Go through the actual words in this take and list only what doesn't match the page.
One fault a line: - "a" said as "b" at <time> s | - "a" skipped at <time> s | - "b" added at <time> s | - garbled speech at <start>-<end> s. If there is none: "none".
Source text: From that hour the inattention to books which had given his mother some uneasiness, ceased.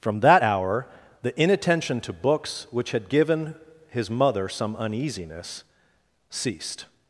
none